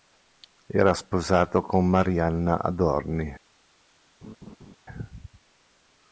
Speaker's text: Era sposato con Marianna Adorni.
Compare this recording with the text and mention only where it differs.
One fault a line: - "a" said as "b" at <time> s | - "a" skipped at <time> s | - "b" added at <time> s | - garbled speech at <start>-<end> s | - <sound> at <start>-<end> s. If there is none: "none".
- laugh at 4.2-4.8 s